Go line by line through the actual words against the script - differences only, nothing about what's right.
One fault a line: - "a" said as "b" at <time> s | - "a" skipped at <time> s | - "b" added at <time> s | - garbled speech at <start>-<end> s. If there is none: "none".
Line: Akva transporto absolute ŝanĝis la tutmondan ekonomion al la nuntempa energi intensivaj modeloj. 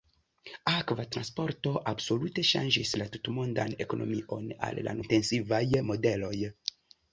- "nuntempa energi" skipped at 5.0 s